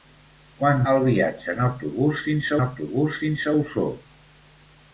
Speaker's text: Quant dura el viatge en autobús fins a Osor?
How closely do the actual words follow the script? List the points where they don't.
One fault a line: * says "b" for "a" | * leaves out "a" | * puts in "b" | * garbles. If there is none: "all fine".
* leaves out "dura"
* puts in "autobús fins"